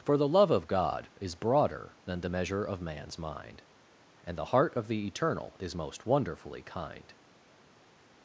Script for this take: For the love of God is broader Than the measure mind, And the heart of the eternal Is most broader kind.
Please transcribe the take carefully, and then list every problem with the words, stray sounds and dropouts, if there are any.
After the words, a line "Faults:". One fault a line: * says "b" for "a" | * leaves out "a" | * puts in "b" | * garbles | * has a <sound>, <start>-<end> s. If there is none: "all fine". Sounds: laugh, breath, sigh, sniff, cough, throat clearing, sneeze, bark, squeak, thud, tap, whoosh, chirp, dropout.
For the love of God is broader Than the measure of man's mind, And the heart of the eternal Is most wonderfully kind.
Faults:
* puts in "of man's"
* says "wonderfully" for "broader"